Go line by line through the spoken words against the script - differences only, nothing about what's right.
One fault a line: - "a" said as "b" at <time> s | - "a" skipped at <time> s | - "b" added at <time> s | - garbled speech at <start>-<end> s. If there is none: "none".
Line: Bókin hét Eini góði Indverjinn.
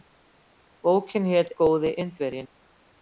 - "Eini" skipped at 1.5 s